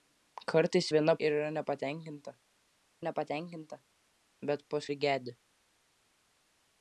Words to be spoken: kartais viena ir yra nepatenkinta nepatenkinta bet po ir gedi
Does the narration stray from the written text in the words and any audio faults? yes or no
no